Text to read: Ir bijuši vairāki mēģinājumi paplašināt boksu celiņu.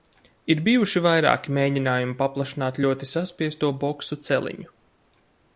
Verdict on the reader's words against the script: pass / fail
fail